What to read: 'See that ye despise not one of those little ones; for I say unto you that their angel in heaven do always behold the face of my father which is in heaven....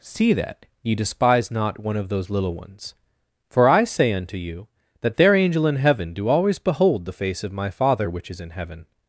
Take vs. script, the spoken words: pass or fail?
pass